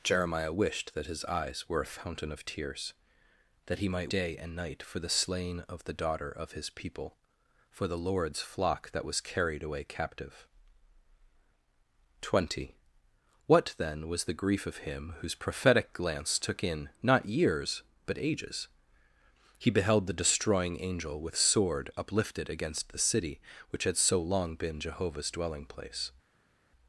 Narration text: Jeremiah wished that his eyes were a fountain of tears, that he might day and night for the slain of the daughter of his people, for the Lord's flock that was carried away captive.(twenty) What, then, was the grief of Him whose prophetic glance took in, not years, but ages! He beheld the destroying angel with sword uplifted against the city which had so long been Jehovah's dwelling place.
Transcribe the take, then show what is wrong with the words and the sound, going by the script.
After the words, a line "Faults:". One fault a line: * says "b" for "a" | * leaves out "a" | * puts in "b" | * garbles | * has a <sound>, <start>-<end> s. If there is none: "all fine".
Jeremiah wished that his eyes were a fountain of tears, that he might day and night for the slain of the daughter of his people, for the Lord's flock that was carried away captive.(twenty) What, then, was the grief of Him whose prophetic glance took in, not years, but ages! He beheld the destroying angel with sword uplifted against the city which had so long been Jehovah's dwelling place.
Faults:
all fine